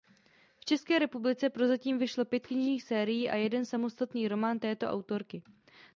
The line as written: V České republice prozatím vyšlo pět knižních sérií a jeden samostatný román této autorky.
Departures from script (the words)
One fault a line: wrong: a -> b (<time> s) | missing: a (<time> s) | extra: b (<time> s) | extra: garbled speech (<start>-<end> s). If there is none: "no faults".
no faults